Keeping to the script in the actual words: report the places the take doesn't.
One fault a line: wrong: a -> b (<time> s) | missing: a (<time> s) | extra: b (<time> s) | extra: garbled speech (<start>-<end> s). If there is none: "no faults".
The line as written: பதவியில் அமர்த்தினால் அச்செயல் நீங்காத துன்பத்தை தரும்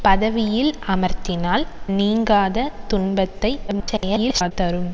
missing: அச்செயல் (1.6 s)
extra: garbled speech (3.7-4.5 s)